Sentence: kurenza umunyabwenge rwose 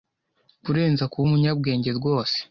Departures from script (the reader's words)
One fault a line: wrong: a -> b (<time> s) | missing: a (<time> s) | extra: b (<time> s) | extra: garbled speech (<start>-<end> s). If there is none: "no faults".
extra: kuba (1.1 s)